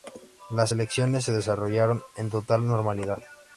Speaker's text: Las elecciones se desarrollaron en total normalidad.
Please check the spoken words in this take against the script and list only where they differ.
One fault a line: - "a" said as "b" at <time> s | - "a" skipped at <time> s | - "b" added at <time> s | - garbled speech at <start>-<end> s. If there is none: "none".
none